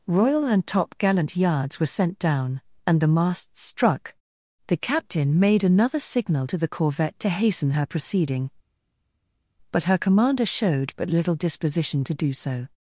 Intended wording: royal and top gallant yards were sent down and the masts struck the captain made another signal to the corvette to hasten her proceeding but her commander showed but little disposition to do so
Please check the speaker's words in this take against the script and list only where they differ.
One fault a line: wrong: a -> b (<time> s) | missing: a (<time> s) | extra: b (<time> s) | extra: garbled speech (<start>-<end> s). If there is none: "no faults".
no faults